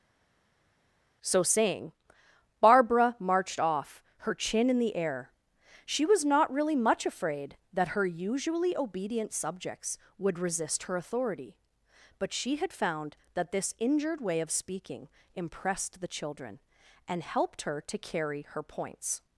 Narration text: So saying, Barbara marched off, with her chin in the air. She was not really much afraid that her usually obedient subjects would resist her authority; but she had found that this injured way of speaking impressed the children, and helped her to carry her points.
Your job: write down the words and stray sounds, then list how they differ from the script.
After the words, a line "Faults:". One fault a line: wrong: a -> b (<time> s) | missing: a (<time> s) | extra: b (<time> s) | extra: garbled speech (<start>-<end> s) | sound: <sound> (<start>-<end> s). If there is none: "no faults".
So saying, Barbara marched off, her chin in the air. She was not really much afraid that her usually obedient subjects would resist her authority; but she had found that this injured way of speaking impressed the children, and helped her to carry her points.
Faults:
missing: with (4.0 s)